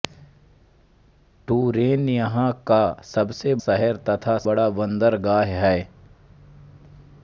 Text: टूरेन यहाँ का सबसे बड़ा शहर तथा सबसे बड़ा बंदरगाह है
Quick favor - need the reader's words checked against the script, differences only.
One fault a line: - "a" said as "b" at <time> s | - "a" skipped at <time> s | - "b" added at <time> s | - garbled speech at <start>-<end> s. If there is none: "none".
- "बड़ा" skipped at 3.5 s
- "सबसे" skipped at 4.4 s